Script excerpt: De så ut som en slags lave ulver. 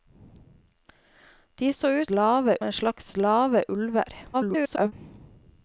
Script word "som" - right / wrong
wrong